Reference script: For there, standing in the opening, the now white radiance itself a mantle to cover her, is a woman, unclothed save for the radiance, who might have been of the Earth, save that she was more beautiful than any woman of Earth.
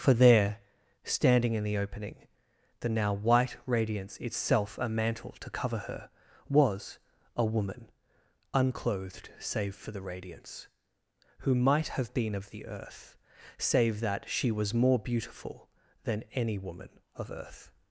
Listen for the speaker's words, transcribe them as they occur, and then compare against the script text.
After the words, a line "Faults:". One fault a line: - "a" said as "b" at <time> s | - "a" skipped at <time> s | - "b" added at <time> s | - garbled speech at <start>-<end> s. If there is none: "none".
For there, standing in the opening, the now white radiance itself a mantle to cover her, was a woman, unclothed save for the radiance, who might have been of the Earth, save that she was more beautiful than any woman of Earth.
Faults:
- "is" said as "was" at 6.5 s